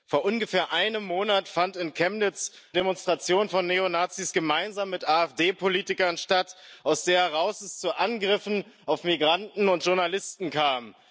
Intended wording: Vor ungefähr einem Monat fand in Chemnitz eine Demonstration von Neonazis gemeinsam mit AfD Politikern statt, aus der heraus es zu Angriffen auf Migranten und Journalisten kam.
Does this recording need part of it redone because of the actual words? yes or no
yes